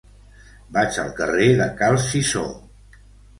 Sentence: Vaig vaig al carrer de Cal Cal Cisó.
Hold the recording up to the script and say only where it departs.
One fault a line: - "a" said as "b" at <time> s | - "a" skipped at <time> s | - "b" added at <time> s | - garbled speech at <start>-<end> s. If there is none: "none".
- "vaig" skipped at 1.0 s
- "Cal" skipped at 2.0 s